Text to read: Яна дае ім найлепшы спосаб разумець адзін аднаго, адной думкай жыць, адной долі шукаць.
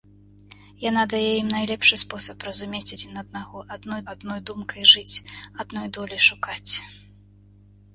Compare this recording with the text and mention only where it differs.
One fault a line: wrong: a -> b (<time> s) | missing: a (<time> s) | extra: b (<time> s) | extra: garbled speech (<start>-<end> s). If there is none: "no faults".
extra: адной (4.1 s)